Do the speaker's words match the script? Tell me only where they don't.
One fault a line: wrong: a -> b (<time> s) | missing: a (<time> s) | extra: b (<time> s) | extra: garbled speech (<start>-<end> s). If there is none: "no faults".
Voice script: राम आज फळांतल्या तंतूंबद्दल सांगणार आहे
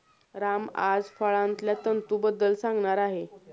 no faults